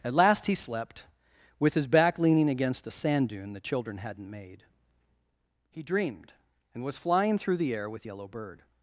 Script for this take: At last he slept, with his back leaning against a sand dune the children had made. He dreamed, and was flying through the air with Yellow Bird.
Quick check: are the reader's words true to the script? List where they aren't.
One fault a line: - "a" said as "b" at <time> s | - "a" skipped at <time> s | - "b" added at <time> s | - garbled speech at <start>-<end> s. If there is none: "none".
- "had" said as "hadn't" at 4.0 s